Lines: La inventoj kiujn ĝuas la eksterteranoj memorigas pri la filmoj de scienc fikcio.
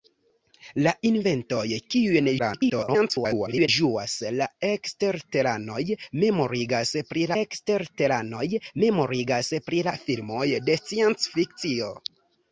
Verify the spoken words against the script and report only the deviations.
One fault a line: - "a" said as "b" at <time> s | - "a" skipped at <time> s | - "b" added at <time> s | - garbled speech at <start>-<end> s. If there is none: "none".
- garbled speech at 2.4-3.7 s
- "eksterteranoj memorigas pri" added at 7.4 s